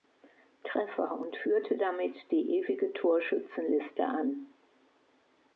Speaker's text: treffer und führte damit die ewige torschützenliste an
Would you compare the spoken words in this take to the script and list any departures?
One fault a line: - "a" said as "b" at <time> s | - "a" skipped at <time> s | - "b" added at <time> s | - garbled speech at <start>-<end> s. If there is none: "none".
none